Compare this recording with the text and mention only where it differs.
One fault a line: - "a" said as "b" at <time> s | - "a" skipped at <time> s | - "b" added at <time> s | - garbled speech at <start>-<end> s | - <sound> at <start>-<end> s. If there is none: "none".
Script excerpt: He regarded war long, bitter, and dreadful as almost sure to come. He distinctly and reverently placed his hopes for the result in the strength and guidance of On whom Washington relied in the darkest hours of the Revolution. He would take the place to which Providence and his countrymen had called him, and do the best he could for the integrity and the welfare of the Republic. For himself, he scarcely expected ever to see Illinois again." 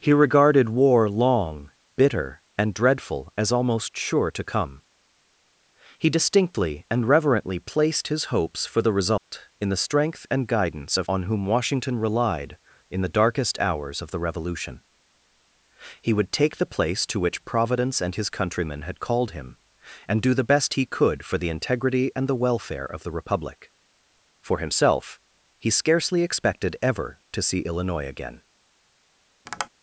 - dropout at 9.2-9.3 s
- tap at 29.5-29.7 s